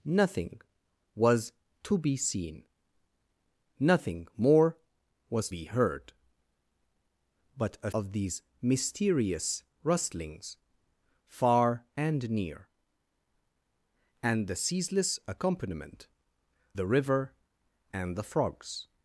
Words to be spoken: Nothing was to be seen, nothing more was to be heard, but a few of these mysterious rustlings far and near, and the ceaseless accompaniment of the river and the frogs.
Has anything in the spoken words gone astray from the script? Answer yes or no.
yes